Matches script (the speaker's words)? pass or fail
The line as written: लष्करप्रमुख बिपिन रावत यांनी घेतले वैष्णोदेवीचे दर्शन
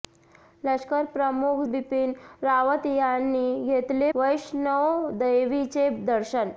pass